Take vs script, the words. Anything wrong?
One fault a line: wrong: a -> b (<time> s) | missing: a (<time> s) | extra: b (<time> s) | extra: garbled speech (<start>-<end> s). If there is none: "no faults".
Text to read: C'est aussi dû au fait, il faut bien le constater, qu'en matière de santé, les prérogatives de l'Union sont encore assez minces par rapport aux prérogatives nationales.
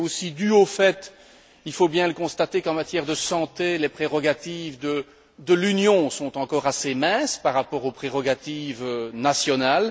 no faults